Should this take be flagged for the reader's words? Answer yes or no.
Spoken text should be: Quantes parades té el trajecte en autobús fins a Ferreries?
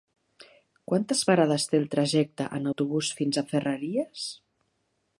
no